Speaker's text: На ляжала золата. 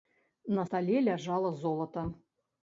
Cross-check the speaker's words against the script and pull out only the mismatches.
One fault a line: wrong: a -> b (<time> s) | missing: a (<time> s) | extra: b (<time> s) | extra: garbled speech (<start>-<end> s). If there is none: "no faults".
extra: стале (0.6 s)